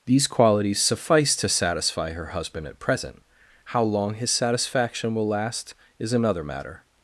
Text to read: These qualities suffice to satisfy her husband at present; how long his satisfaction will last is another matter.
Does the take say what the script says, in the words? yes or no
yes